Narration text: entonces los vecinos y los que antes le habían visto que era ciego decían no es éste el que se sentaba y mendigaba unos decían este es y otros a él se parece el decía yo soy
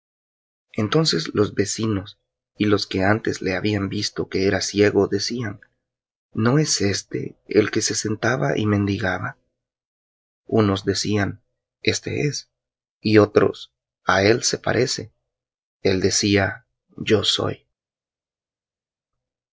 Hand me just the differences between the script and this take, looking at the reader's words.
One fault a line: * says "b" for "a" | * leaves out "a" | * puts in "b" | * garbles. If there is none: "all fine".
all fine